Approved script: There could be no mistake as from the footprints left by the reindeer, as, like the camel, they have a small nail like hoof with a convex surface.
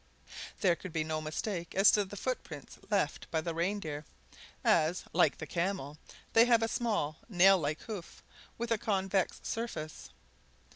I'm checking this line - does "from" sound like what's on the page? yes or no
no